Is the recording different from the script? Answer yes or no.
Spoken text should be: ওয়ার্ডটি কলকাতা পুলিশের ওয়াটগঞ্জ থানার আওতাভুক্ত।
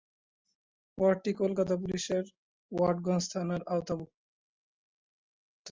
no